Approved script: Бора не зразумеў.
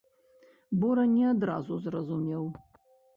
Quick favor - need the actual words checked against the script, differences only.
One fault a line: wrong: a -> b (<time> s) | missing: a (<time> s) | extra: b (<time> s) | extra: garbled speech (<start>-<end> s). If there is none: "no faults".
extra: адразу (1.3 s)